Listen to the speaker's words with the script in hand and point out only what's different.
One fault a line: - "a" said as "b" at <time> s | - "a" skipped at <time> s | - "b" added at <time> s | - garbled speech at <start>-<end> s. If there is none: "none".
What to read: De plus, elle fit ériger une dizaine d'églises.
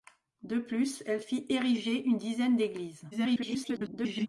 - garbled speech at 3.1-4.3 s